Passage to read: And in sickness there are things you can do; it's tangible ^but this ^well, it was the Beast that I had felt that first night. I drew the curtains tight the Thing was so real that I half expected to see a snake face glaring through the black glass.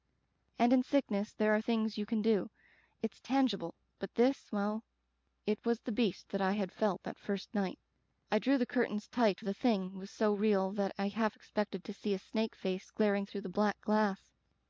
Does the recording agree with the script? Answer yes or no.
yes